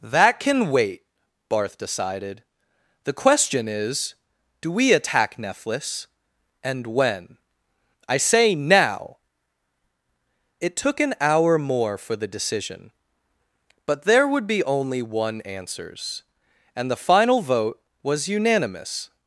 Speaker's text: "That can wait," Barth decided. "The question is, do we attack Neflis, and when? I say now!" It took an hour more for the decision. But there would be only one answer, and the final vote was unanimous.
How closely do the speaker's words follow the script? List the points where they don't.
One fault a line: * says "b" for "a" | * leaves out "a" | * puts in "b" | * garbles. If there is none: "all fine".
* says "answers" for "answer"